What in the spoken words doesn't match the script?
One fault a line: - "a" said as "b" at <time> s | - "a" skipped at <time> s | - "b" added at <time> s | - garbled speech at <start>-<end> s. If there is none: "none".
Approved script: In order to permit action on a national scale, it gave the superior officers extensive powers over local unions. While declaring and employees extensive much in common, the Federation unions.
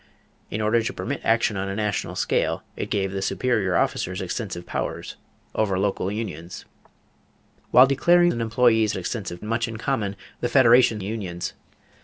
none